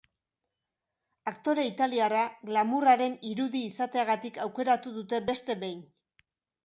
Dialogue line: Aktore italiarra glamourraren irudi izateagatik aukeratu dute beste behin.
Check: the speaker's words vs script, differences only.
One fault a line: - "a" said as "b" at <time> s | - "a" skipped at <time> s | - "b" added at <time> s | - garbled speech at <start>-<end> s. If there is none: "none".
none